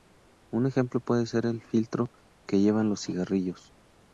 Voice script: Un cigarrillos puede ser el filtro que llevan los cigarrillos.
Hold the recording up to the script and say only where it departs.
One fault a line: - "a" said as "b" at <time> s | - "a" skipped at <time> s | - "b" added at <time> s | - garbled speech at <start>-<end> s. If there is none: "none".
- "cigarrillos" said as "ejemplo" at 0.7 s